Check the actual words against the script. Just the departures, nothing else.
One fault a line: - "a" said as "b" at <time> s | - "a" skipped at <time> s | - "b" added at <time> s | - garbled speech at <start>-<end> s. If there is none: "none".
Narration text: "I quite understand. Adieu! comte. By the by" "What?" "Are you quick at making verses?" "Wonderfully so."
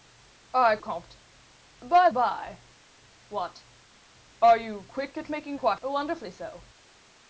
- "quite understand Adieu" skipped at 0.8 s
- "the" skipped at 2.1 s
- "verses" said as "quite" at 5.5 s